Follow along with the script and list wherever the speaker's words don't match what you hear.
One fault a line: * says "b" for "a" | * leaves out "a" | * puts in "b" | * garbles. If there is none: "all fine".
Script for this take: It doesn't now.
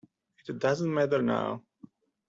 * puts in "matter"